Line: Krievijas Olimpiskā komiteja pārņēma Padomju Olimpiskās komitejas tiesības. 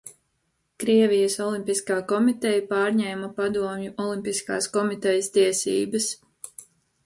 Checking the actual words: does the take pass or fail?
pass